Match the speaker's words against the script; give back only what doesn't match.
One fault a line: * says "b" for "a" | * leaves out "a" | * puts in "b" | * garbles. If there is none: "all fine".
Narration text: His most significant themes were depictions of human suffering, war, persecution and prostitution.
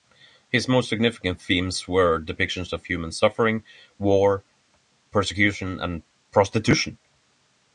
all fine